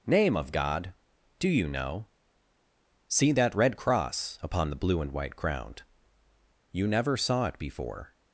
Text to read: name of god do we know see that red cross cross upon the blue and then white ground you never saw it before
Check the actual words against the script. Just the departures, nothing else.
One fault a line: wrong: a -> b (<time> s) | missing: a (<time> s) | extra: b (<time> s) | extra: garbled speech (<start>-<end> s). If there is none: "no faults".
wrong: we -> you (1.5 s)
missing: cross (4.4 s)
missing: then (5.1 s)